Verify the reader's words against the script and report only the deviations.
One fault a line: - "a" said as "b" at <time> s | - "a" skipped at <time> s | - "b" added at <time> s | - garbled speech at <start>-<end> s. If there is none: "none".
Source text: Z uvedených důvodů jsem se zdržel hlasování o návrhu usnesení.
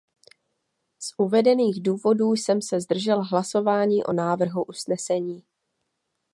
none